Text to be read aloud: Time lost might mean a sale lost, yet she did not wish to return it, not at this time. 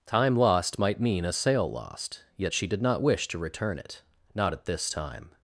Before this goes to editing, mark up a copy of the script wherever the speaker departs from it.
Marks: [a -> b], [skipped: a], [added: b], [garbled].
Time lost might mean a sale lost, yet she did not wish to return it, not at this time.